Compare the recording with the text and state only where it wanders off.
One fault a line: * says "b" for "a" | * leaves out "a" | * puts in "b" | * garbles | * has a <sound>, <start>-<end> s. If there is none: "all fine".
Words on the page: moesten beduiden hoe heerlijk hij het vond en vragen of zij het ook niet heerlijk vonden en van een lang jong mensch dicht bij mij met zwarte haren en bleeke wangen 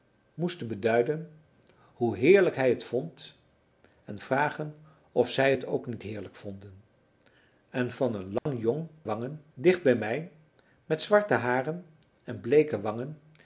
* has a dropout, 8.4-8.5 s
* says "wangen" for "mensch"